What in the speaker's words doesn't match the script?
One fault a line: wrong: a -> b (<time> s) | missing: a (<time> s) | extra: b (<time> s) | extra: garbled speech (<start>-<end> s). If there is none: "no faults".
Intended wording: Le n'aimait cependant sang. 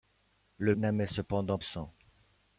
no faults